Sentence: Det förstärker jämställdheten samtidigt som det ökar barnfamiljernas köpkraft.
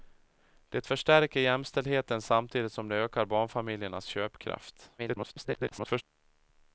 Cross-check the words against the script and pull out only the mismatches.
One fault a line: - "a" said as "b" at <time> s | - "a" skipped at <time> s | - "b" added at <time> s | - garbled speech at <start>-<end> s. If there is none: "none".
- garbled speech at 5.0-6.0 s